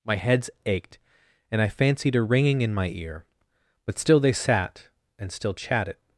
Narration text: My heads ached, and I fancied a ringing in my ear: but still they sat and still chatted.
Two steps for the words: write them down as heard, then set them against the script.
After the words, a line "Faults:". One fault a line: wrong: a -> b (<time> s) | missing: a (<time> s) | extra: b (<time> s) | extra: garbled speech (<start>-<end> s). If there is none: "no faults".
My heads ached, and I fancied a ringing in my ear: but still they sat and still chatted.
Faults:
no faults